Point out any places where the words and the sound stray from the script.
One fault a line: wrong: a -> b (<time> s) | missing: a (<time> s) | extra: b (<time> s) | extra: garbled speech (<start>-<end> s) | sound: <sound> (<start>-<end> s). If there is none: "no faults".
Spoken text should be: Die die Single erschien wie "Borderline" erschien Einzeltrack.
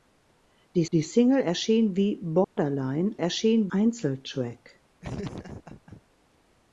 sound: dropout (2.4-2.6 s)
sound: laugh (5.0-6.0 s)